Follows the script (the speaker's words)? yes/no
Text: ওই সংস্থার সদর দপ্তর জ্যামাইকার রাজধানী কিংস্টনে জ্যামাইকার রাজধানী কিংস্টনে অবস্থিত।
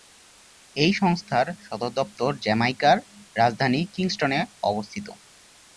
no